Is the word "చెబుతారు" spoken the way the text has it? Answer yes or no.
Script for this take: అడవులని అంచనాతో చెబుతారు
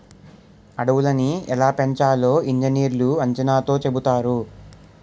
yes